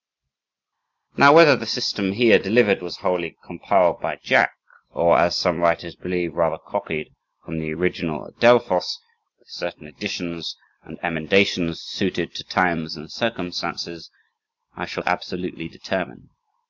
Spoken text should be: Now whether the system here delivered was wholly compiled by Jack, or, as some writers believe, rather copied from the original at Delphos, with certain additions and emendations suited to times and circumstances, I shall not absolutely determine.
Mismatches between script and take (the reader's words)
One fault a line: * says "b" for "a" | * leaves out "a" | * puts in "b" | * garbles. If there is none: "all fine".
* leaves out "not"